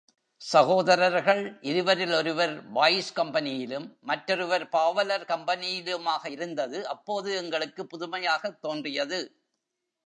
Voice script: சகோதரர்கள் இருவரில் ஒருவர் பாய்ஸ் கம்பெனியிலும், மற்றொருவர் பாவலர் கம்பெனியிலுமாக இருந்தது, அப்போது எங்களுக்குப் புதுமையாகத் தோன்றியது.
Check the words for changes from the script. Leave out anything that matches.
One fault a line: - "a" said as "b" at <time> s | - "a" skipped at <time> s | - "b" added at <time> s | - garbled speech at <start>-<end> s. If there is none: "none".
none